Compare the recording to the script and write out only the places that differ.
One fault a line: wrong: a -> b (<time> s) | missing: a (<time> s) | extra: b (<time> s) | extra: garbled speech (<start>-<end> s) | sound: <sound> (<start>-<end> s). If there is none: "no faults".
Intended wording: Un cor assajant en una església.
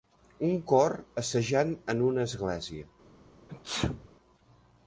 sound: sneeze (3.5-4.1 s)